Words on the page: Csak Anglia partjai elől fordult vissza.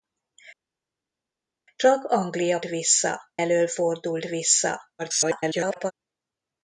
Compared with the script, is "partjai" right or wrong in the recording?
wrong